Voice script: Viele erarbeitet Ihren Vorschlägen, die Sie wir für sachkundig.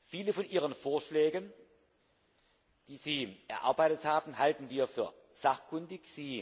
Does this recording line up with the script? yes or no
no